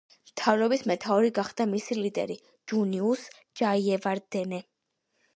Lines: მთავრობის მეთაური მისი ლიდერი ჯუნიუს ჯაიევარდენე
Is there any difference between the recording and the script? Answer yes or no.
yes